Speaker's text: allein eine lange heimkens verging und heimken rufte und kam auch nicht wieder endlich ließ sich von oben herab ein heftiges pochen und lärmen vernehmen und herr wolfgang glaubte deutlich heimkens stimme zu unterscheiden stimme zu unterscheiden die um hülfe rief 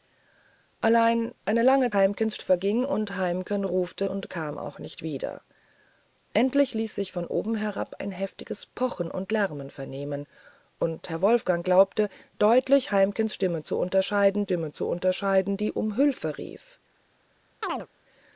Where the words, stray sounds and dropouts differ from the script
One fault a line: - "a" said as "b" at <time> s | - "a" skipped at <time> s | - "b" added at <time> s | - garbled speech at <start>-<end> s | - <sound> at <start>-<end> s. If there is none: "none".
- chirp at 17.6-17.9 s